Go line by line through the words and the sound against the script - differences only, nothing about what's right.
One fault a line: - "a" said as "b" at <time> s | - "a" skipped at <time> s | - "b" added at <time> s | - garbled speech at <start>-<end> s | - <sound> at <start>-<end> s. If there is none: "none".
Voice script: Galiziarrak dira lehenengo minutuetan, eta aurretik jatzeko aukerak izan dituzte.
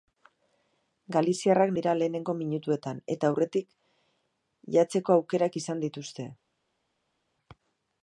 none